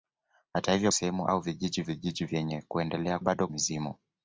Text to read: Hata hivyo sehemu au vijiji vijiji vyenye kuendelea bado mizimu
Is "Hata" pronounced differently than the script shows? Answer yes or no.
no